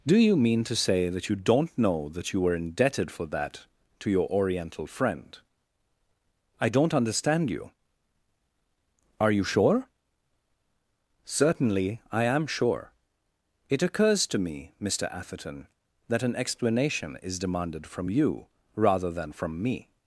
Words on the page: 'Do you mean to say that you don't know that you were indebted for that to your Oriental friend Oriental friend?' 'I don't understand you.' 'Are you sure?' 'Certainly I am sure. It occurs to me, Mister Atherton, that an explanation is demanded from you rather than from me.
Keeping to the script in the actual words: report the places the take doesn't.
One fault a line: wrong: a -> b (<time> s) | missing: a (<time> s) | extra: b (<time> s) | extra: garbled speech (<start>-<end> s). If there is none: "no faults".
missing: Oriental friend (5.4 s)